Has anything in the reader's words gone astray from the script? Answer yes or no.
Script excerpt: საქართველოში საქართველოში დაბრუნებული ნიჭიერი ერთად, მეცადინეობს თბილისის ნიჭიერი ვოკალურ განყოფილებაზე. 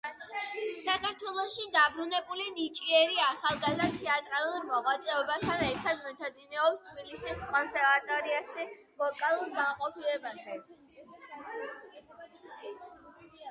yes